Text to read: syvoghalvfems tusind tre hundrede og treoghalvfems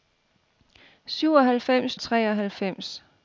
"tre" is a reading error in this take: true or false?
true